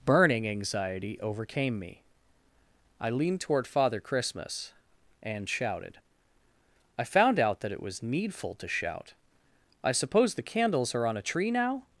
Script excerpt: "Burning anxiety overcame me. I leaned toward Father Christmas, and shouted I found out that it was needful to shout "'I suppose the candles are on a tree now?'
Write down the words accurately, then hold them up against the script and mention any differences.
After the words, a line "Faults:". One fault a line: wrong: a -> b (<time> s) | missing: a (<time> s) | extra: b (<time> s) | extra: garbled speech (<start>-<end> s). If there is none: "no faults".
"Burning anxiety overcame me. I leaned toward Father Christmas, and shouted I found out that it was needful to shout "'I suppose the candles are on a tree now?'
Faults:
no faults